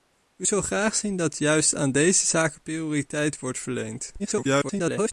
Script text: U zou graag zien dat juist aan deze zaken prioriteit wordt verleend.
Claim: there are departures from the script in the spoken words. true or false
true